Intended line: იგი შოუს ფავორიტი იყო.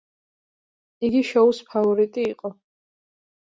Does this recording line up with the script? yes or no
yes